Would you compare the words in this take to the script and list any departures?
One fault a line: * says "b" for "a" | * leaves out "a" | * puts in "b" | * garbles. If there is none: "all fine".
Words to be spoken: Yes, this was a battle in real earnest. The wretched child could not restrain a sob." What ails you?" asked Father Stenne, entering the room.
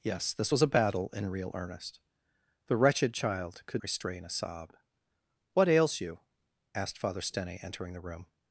* leaves out "not"